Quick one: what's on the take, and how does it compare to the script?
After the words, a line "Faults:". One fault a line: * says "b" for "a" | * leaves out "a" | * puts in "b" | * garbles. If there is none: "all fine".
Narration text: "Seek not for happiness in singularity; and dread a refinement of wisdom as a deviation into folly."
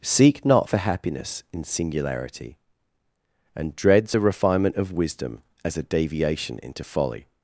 "Seek not for happiness in singularity; and dreads a refinement of wisdom as a deviation into folly."
Faults:
* says "dreads" for "dread"